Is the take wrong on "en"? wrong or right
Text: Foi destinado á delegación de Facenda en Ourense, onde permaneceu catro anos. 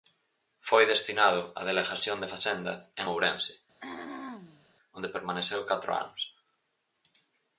right